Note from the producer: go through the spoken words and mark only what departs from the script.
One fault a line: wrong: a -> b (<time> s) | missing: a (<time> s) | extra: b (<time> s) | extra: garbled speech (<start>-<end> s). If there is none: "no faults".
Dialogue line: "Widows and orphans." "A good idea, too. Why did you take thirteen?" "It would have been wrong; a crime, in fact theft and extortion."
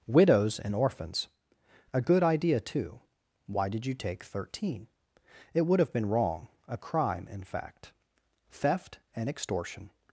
no faults